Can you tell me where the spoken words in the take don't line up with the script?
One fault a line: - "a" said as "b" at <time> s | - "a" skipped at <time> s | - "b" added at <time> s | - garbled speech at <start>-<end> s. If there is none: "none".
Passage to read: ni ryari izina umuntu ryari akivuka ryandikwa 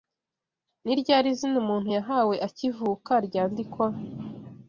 - "ryari" said as "yahawe" at 2.0 s